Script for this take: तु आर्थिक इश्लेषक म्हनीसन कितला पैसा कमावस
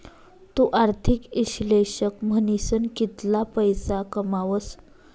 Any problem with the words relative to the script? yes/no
no